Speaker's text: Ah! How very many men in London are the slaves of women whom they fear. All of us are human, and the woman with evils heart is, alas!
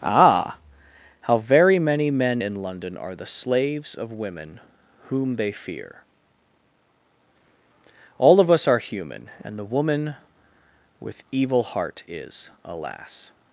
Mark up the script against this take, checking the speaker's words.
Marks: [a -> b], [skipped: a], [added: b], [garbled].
Ah! How very many men in London are the slaves of women whom they fear. All of us are human, and the woman with [evils -> evil] heart is, alas!